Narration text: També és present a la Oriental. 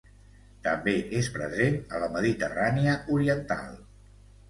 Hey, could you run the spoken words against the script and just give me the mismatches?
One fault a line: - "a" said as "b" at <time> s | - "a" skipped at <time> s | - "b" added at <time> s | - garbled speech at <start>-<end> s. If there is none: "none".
- "Mediterrània" added at 2.2 s